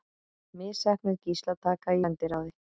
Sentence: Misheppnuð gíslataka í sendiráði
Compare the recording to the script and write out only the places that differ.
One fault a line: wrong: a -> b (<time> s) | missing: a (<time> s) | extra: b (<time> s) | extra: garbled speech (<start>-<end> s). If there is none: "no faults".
missing: í (2.0 s)